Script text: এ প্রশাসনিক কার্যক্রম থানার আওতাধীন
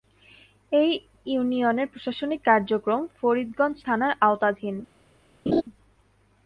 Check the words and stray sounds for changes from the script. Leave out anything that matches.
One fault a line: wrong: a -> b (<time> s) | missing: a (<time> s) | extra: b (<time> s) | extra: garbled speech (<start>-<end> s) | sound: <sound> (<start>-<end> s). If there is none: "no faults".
extra: ইউনিয়নের (1.3 s)
extra: ফরিদগঞ্জ (3.2 s)
sound: laugh (5.5-5.6 s)